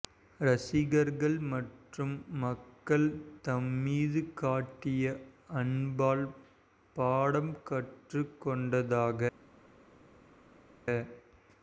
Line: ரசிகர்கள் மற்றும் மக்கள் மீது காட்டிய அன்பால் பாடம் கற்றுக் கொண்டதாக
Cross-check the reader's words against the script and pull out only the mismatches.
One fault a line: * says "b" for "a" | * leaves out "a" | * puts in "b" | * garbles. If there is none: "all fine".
* puts in "தம்"